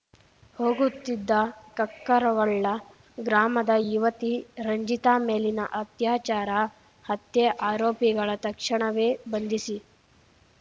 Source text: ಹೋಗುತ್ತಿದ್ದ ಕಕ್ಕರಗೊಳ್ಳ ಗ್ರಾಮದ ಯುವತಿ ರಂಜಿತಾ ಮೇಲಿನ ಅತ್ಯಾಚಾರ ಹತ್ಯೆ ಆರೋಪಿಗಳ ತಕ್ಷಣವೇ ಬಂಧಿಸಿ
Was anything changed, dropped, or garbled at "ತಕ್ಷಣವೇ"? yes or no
no